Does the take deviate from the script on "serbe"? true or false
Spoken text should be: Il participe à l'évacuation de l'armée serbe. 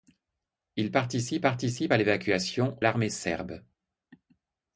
false